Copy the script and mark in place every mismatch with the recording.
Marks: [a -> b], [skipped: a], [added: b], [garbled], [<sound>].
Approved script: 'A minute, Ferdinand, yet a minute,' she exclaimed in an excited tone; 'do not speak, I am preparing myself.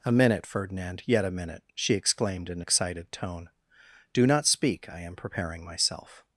'A minute, Ferdinand, yet a minute,' she exclaimed in [skipped: an] excited tone; 'do not speak, I am preparing myself.